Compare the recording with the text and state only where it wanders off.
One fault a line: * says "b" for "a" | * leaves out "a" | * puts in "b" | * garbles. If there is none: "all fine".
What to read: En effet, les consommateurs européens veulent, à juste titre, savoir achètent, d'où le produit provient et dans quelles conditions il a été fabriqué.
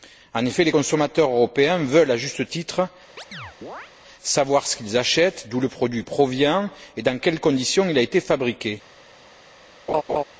* puts in "ce qu'ils"